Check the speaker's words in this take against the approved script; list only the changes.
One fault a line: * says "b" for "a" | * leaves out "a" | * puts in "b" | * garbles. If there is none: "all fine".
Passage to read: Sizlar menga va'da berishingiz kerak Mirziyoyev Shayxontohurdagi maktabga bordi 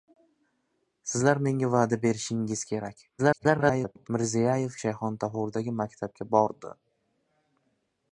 * garbles